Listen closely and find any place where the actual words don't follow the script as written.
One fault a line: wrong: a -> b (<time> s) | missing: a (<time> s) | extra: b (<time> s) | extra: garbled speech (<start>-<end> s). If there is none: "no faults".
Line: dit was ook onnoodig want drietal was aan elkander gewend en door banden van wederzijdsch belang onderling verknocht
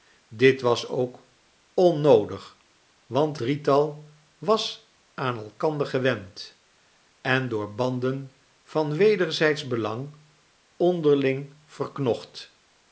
no faults